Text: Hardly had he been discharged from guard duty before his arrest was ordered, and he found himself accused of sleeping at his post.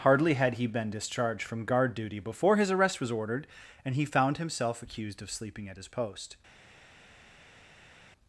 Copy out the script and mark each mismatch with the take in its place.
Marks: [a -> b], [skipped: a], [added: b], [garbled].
Hardly had he been discharged from guard duty before his arrest was ordered, and he found himself accused of sleeping at his post.